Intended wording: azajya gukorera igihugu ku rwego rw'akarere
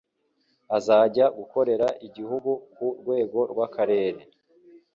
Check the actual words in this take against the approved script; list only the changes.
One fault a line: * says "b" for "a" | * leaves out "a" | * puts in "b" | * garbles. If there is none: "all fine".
all fine